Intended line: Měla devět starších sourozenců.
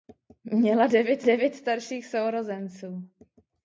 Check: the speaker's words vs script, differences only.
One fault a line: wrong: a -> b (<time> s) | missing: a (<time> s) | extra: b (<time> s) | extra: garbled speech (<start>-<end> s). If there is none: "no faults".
extra: devět (1.2 s)